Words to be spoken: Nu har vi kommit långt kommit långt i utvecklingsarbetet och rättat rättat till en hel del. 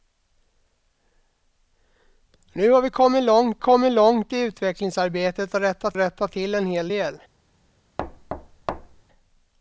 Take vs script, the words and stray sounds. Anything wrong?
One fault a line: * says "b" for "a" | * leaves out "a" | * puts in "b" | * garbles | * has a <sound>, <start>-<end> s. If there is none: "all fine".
* has a thud, 8.0-9.0 s